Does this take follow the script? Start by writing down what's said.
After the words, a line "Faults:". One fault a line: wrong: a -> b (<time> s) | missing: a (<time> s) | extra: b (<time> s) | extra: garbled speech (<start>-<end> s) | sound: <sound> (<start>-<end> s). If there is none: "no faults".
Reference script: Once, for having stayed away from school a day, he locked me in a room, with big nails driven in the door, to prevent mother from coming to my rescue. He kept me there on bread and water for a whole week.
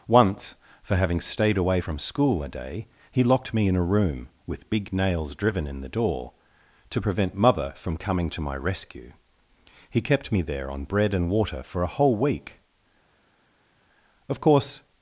Once, for having stayed away from school a day, he locked me in a room, with big nails driven in the door, to prevent mother from coming to my rescue. He kept me there on bread and water for a whole week. Of course
Faults:
extra: Of course (14.3 s)